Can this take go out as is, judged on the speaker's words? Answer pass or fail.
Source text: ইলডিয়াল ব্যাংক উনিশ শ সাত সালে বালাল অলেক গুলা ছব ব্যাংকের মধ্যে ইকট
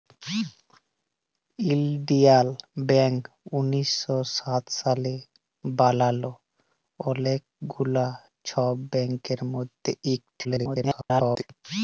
fail